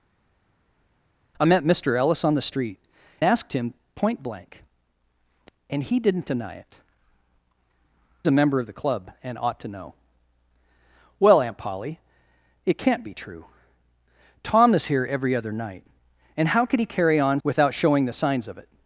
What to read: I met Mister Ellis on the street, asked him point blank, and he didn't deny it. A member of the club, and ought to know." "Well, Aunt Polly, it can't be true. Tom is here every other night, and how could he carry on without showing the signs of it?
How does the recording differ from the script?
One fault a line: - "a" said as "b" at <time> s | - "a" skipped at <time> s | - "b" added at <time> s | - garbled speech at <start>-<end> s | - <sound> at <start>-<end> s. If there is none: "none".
none